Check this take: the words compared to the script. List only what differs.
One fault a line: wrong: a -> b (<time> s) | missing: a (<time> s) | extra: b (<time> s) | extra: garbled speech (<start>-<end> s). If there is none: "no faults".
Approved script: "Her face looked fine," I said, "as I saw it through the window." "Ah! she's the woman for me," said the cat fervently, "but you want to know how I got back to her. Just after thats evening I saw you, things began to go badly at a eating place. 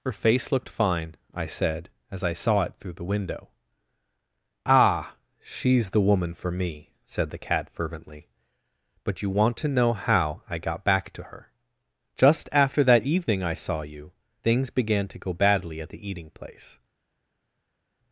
wrong: thats -> that (12.8 s)
wrong: a -> the (15.9 s)